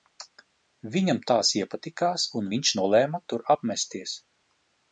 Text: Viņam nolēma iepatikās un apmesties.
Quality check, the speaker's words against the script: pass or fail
fail